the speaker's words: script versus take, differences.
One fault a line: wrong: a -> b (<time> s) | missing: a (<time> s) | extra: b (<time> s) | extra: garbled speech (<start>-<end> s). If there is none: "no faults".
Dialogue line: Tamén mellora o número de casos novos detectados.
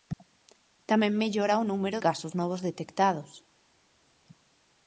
missing: de (2.0 s)